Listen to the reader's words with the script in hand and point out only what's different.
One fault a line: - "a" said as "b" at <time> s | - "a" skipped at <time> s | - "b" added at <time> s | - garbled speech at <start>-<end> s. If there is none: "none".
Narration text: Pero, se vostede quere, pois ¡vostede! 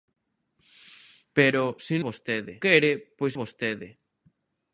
none